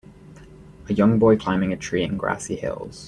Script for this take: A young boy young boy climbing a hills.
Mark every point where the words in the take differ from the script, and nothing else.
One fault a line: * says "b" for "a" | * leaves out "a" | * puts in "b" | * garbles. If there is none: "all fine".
* says "climbing a tree in grassy" for "young boy climbing a"